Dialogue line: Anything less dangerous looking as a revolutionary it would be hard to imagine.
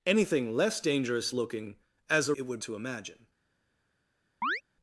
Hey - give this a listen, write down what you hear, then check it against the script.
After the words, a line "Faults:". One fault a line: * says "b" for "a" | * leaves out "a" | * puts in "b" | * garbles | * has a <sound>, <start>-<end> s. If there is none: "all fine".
Anything less dangerous looking as a it would to imagine.
Faults:
* leaves out "revolutionary"
* leaves out "be hard"
* has a chirp, 4.4-4.6 s